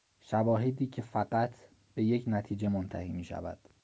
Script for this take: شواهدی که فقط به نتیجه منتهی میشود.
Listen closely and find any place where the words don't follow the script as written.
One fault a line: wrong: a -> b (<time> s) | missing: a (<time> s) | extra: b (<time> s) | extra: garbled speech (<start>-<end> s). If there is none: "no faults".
extra: یک (2.0 s)